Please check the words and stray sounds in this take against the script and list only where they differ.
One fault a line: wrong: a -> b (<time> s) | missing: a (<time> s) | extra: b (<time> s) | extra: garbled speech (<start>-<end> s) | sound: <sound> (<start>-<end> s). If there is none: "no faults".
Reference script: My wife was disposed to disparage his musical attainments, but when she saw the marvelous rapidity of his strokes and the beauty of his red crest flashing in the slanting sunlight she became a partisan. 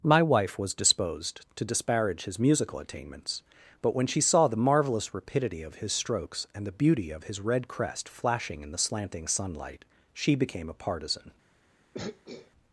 sound: throat clearing (11.9-12.5 s)